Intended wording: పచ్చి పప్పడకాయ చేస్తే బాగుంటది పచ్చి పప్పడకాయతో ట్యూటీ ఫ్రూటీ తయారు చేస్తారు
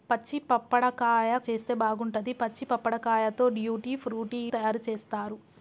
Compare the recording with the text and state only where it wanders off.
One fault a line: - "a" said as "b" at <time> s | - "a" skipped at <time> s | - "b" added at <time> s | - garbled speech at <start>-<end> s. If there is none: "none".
none